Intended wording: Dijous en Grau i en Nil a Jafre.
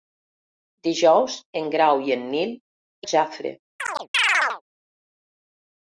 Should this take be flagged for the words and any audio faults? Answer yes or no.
yes